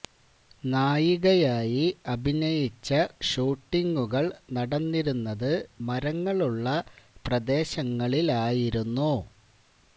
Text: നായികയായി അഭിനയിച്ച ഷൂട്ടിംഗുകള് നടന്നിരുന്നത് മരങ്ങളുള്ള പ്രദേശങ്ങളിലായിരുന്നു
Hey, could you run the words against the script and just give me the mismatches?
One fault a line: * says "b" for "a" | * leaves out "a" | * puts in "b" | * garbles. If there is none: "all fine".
all fine